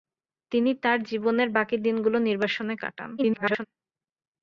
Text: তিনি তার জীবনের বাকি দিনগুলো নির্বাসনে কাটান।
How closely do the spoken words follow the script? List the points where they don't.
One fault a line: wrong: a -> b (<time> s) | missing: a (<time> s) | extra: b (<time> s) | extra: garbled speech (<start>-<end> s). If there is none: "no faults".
extra: garbled speech (3.2-3.7 s)